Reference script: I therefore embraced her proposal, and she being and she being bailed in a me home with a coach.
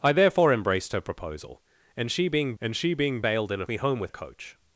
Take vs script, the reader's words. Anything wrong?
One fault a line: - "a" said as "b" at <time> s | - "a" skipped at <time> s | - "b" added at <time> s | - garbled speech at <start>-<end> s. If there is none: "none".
none